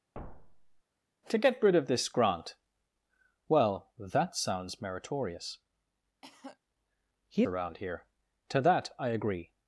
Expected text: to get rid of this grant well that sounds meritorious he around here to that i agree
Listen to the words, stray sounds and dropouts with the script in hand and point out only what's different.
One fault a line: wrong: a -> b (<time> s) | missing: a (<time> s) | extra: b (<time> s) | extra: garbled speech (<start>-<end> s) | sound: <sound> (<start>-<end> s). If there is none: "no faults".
sound: thud (0.1-0.8 s)
sound: cough (6.2-6.6 s)